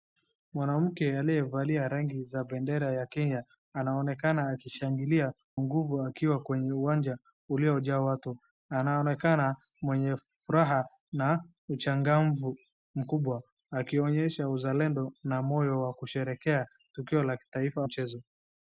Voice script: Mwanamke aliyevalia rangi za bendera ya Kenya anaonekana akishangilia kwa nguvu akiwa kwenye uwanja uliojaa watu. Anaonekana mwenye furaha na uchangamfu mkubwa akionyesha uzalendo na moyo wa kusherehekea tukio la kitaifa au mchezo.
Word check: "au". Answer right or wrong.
wrong